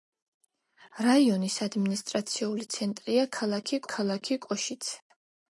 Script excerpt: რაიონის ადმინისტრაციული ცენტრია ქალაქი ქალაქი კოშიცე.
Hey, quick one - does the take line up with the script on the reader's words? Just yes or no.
yes